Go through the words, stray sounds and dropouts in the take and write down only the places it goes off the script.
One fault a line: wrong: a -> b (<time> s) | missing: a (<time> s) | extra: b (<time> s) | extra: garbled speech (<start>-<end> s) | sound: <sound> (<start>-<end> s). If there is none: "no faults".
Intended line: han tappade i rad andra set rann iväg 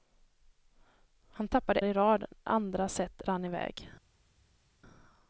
no faults